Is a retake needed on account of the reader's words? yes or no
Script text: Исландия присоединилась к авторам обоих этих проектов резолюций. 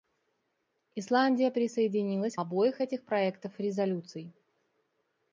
yes